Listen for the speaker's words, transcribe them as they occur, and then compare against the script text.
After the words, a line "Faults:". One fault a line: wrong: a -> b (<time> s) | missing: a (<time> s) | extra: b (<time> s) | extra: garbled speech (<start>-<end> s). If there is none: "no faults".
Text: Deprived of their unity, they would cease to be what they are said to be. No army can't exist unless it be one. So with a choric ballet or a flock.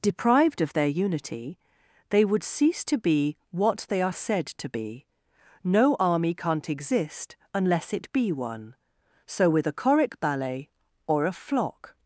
Deprived of their unity, they would cease to be what they are said to be. No army can't exist unless it be one. So with a choric ballet or a flock.
Faults:
no faults